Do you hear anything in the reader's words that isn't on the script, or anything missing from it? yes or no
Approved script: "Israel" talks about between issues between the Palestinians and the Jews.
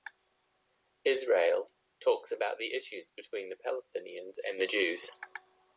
yes